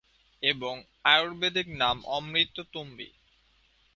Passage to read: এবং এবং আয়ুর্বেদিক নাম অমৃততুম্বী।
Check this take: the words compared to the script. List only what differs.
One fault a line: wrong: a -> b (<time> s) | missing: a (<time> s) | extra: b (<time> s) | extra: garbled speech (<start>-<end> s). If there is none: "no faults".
missing: এবং (0.7 s)